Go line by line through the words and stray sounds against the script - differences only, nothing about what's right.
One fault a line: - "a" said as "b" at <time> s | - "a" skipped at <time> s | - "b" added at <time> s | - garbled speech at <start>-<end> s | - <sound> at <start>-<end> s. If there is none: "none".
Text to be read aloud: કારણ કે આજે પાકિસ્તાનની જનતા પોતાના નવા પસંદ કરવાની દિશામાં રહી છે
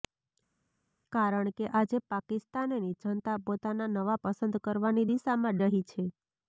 none